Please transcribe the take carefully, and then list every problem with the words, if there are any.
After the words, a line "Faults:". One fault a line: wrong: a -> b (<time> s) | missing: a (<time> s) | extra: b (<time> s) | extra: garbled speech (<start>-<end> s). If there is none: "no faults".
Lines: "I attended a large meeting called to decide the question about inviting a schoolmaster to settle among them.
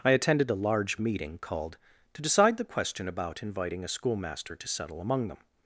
"I attended a large meeting called to decide the question about inviting a schoolmaster to settle among them.
Faults:
no faults